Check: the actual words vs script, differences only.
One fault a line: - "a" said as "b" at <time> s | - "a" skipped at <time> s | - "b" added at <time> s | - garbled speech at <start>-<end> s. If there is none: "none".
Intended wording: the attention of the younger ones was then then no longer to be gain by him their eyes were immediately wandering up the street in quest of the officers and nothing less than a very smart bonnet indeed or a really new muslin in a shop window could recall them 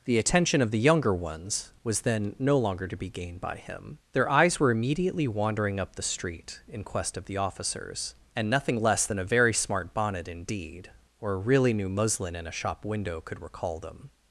- "then" skipped at 2.4 s
- "gain" said as "gained" at 3.1 s